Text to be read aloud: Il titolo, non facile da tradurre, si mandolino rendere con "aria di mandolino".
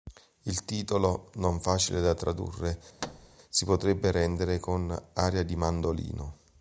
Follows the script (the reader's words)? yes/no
no